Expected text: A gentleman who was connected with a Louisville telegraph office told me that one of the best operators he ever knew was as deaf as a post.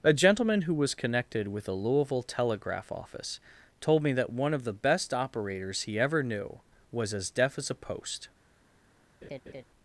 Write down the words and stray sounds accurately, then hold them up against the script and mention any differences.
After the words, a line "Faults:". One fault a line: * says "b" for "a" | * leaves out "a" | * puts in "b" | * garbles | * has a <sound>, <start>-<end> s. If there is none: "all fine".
A gentleman who was connected with a Louisville telegraph office told me that one of the best operators he ever knew was as deaf as a post.
Faults:
* has a laugh, 9.2-9.6 s